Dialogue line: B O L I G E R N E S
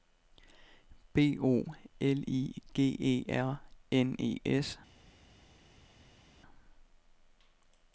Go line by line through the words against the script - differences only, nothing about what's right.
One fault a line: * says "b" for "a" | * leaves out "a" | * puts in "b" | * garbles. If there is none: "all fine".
all fine